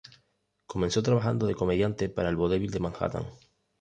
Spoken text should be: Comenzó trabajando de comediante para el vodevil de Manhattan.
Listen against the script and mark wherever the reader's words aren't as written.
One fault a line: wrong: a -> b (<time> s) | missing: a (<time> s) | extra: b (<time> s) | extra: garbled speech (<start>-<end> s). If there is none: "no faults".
no faults